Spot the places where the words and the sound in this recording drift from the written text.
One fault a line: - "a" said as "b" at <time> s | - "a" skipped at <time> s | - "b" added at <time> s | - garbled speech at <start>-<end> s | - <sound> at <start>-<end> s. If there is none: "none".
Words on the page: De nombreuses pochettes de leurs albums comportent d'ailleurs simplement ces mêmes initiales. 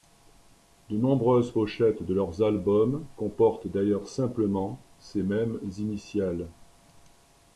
none